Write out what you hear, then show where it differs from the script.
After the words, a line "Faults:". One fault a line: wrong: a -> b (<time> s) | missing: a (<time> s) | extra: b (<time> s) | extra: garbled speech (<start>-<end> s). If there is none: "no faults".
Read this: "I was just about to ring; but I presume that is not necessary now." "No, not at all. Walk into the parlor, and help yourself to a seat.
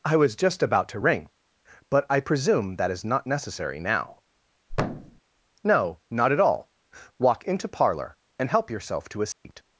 "I was just about to ring; but I presume that is not necessary now." "No, not at all. Walk into parlor, and help yourself to a seat.
Faults:
missing: the (7.7 s)